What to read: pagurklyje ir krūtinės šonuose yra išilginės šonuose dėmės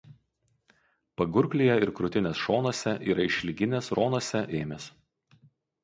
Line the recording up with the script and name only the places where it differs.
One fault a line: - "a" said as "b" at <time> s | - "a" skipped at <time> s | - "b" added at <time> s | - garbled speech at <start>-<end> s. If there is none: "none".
none